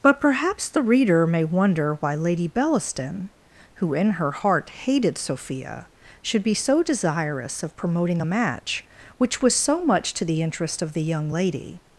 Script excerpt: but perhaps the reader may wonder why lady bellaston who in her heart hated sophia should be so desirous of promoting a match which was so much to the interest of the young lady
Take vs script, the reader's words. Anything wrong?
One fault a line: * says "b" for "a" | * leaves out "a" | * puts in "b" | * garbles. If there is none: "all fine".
all fine